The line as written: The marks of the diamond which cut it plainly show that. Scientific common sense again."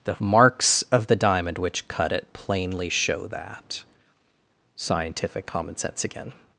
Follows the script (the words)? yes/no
yes